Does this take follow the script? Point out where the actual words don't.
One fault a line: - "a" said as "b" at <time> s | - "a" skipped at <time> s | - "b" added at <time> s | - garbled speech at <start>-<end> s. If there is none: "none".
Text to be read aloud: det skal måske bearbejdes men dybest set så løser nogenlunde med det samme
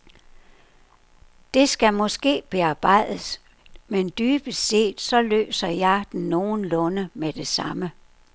- "jeg den" added at 5.7 s